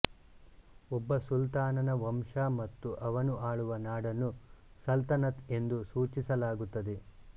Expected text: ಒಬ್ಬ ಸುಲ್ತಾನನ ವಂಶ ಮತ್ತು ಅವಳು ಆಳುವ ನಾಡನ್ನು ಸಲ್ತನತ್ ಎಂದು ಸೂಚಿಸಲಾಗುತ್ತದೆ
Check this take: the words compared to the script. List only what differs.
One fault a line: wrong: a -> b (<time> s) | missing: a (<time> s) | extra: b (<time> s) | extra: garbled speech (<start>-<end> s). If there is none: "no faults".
wrong: ಅವಳು -> ಅವನು (3.0 s)